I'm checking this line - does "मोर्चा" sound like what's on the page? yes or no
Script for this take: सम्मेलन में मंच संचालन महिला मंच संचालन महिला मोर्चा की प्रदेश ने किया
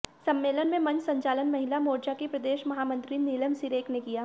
no